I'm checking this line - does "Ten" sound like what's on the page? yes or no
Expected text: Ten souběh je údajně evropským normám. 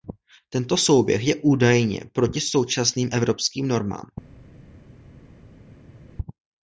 no